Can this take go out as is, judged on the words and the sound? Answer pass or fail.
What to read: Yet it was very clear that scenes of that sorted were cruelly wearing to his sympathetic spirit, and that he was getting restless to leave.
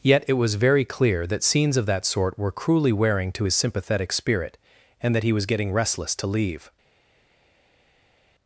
fail